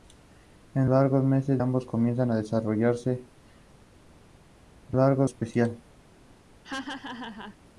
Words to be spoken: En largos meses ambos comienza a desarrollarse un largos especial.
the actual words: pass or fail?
pass